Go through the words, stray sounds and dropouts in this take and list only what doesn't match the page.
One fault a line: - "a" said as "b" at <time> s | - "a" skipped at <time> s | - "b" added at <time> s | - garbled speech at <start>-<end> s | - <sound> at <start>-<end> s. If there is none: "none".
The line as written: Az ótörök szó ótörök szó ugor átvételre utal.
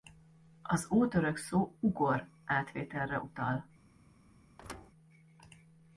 - "ótörök szó" skipped at 1.8 s
- thud at 4.6-4.9 s